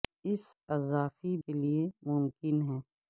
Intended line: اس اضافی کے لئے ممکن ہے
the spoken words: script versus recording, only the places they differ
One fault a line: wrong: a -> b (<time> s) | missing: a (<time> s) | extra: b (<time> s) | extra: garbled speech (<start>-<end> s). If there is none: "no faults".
no faults